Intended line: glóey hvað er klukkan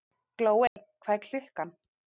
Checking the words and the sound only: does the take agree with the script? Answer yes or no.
no